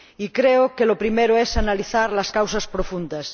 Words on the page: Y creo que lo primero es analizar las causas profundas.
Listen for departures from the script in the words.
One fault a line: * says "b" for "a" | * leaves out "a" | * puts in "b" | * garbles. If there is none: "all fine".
all fine